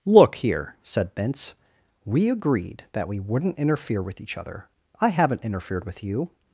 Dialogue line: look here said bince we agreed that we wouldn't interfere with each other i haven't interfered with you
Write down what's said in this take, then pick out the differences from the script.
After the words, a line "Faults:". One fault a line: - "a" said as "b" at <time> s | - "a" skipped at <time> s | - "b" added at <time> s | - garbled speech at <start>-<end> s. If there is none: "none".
look here said bince we agreed that we wouldn't interfere with each other i haven't interfered with you
Faults:
none